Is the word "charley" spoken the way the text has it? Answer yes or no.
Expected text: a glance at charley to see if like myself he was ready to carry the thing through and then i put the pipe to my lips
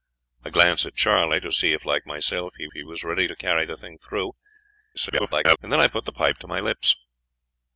yes